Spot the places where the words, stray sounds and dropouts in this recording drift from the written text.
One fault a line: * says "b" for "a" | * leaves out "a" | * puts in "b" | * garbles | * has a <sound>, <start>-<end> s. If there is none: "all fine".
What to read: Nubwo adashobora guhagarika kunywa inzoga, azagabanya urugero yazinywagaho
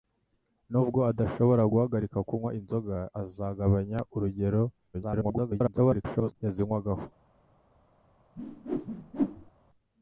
* garbles
* has a whoosh, 8.4-9.5 s